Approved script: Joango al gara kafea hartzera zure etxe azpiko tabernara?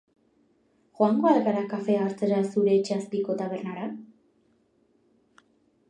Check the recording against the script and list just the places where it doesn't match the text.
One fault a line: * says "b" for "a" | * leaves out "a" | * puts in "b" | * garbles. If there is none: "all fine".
all fine